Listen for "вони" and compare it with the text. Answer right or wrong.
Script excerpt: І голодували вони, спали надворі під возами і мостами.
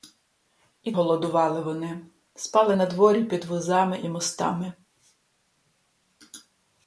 right